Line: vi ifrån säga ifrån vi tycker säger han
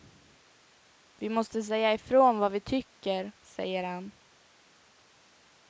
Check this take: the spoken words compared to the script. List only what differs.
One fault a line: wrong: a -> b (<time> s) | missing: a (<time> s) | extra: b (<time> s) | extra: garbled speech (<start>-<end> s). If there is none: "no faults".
wrong: ifrån -> måste (1.3 s)
extra: vad (2.4 s)